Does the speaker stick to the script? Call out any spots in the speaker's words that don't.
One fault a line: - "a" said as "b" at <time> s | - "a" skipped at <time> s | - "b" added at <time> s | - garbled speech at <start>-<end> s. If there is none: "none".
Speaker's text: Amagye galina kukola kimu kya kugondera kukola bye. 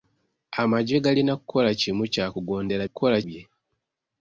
none